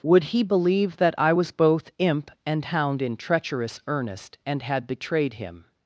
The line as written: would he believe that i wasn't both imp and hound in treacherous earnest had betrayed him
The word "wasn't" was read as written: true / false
false